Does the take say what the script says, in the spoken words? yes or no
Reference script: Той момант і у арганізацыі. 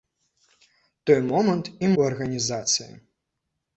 yes